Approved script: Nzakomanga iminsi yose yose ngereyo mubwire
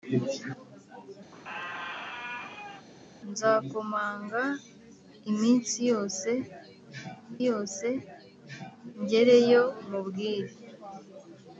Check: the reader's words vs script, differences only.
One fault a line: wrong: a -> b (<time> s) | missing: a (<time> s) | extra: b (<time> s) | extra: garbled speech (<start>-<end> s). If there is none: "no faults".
no faults